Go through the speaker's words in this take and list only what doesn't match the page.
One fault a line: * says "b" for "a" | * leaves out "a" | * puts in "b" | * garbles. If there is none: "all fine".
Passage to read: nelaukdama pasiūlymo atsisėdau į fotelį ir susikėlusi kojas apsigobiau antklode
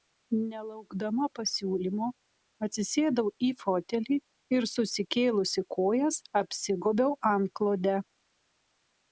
all fine